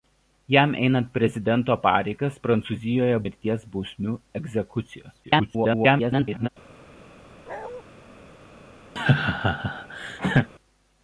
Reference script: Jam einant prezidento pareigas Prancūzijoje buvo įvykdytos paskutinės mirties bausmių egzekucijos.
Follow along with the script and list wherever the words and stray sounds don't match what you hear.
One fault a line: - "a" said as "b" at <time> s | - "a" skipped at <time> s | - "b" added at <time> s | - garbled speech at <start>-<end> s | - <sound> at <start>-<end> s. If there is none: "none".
- "buvo įvykdytos paskutinės" skipped at 3.2 s
- garbled speech at 5.2-6.5 s
- bark at 7.5-7.8 s
- laugh at 9.0-10.5 s